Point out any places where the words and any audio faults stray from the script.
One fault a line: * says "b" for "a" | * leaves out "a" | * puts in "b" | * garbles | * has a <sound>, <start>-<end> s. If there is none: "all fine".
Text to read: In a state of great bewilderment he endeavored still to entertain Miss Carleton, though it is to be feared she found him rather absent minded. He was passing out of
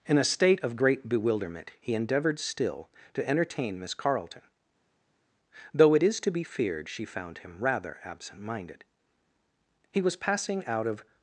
all fine